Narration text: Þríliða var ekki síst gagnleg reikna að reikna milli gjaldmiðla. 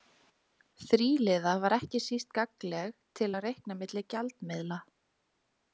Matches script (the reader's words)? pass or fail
fail